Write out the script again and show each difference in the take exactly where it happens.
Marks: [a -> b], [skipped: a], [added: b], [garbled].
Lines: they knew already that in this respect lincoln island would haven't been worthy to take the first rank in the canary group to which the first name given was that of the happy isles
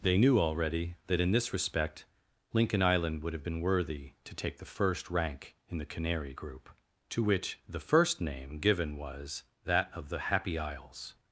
they knew already that in this respect lincoln island would [haven't -> have] been worthy to take the first rank in the canary group to which the first name given was that of the happy isles